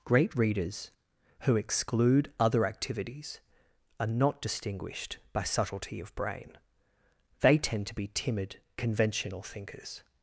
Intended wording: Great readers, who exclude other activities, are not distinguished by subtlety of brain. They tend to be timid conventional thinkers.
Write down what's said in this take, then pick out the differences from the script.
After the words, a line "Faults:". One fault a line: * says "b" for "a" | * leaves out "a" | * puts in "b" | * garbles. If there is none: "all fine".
Great readers, who exclude other activities, are not distinguished by subtlety of brain. They tend to be timid conventional thinkers.
Faults:
all fine